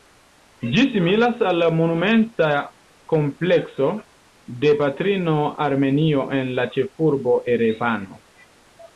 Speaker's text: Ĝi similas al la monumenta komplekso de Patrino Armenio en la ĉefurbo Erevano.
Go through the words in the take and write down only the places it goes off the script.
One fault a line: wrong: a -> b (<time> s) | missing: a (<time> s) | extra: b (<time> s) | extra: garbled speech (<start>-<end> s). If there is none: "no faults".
no faults